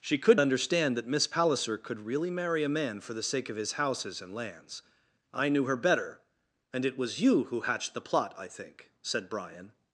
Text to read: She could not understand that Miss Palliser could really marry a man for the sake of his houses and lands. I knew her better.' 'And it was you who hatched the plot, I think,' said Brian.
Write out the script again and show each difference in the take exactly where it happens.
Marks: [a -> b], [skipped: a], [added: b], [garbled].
She could [skipped: not] understand that Miss Palliser could really marry a man for the sake of his houses and lands. I knew her better.' 'And it was you who hatched the plot, I think,' said Brian.